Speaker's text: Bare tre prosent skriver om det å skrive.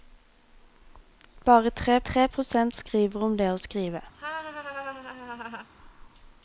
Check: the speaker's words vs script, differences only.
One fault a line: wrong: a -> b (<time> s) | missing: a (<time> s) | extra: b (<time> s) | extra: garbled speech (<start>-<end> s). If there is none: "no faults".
extra: tre (2.0 s)